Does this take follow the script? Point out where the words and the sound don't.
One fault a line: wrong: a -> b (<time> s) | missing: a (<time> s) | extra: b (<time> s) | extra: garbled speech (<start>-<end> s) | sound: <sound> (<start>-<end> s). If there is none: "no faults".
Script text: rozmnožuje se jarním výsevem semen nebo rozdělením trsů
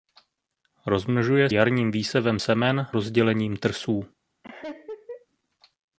missing: se (1.5 s)
missing: nebo (2.9 s)
sound: laugh (4.4-5.3 s)